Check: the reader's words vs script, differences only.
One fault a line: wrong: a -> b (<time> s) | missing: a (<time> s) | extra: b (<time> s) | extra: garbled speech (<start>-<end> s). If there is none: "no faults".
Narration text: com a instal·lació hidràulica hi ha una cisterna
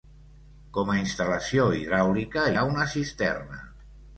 missing: hi (2.5 s)